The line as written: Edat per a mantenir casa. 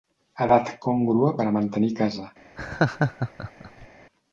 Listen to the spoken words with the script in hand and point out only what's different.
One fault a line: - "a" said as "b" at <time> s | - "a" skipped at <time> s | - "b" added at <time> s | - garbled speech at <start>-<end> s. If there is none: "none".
- "còngrua" added at 0.9 s